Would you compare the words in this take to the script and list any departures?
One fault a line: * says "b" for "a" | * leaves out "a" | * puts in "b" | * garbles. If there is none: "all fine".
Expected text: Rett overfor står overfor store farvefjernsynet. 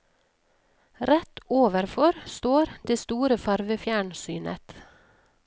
* says "det" for "overfor"